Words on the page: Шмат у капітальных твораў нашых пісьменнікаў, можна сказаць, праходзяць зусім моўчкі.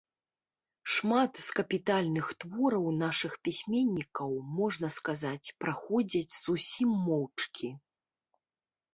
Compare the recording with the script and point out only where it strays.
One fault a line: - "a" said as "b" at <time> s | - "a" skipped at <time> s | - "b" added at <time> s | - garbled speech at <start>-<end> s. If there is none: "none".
- "у" said as "з" at 1.5 s